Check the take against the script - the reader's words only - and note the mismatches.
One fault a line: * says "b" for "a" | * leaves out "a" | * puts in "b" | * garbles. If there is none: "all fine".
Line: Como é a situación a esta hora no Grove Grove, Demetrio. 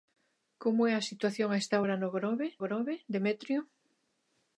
all fine